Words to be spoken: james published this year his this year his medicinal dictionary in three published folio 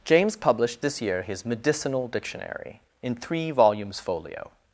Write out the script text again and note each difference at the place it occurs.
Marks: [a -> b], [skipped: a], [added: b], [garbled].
james published this year his [skipped: this year his] medicinal dictionary in three [published -> volumes] folio